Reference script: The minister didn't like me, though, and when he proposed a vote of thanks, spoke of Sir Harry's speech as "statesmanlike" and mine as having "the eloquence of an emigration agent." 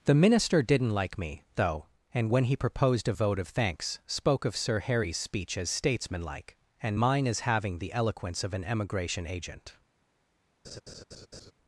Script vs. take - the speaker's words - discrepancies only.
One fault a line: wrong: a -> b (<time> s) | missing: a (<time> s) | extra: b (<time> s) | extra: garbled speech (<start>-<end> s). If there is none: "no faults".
no faults